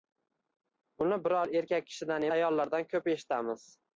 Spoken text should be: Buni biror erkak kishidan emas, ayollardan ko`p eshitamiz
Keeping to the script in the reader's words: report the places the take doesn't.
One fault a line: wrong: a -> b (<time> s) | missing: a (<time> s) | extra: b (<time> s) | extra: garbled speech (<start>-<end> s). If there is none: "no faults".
missing: emas (2.3 s)